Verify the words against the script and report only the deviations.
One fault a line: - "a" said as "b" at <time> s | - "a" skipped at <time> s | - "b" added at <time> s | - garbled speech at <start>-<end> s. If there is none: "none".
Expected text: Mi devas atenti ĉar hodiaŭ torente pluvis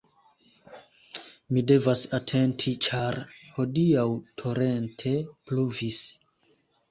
none